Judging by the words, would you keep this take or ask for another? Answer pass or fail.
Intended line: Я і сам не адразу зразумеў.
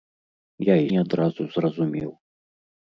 fail